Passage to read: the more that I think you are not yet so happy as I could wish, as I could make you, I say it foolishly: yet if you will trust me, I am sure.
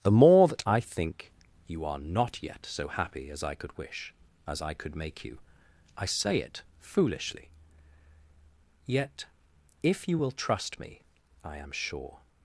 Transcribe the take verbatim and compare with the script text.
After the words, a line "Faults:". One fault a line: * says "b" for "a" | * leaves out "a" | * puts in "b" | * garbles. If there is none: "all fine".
the more that I think you are not yet so happy as I could wish, as I could make you, I say it foolishly: yet if you will trust me, I am sure.
Faults:
all fine